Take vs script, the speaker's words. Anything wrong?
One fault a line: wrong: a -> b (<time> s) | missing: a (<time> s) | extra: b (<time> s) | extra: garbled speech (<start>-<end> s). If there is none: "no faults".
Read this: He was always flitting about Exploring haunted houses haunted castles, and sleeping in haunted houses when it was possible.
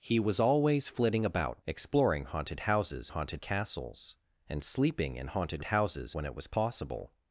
no faults